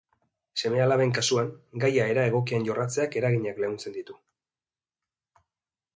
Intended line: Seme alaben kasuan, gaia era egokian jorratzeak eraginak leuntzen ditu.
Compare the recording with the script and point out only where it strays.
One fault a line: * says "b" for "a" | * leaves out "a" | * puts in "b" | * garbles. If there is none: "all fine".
all fine